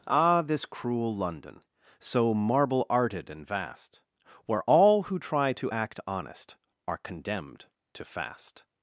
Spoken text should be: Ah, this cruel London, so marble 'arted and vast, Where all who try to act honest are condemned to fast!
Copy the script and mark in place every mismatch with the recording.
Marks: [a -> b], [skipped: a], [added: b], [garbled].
Ah, this cruel London, so marble 'arted and vast, Where all who try to act honest are condemned to fast!